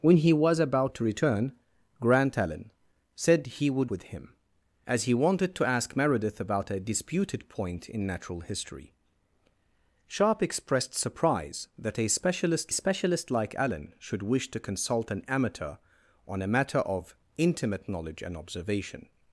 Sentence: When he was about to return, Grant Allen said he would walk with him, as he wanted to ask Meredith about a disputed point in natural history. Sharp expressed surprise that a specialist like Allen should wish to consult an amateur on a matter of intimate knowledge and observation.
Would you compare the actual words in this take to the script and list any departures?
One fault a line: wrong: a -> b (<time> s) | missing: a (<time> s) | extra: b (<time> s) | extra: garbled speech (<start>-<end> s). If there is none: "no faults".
missing: walk (3.9 s)
extra: specialist (12.7 s)